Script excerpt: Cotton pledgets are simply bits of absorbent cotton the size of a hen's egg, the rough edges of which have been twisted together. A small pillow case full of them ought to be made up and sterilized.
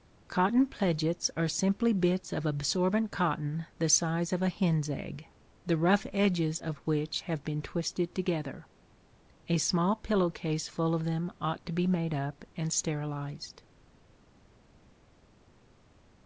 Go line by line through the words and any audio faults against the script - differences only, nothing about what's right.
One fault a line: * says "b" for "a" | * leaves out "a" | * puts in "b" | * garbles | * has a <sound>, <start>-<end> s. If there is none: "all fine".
all fine